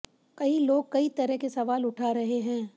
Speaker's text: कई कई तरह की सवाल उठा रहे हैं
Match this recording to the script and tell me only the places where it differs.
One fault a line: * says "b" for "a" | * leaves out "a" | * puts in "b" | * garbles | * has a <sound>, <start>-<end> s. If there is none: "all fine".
* puts in "लोग"
* says "के" for "की"